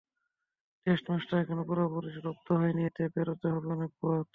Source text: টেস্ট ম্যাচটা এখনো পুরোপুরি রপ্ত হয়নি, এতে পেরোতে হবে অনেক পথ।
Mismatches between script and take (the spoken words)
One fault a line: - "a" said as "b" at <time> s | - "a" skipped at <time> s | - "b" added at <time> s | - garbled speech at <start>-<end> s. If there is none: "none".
none